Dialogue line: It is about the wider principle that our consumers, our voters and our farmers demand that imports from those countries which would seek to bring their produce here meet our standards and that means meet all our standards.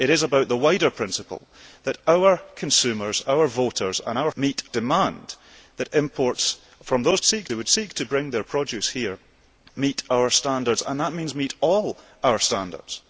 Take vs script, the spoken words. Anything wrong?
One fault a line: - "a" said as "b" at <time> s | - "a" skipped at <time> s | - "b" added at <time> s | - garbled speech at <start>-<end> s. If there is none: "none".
- "farmers" said as "meet" at 4.4 s
- "countries" said as "seek" at 7.2 s